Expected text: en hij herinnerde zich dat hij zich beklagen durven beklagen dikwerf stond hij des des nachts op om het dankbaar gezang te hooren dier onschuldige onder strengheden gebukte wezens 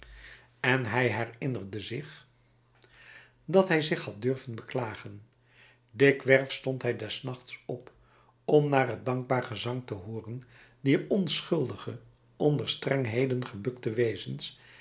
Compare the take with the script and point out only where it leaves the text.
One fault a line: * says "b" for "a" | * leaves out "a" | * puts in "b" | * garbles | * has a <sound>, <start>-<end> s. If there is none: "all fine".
* says "had" for "beklagen"
* leaves out "des"
* puts in "naar"